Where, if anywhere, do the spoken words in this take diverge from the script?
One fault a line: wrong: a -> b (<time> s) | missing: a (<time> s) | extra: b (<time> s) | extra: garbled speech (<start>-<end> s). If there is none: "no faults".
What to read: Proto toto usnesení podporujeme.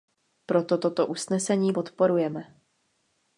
no faults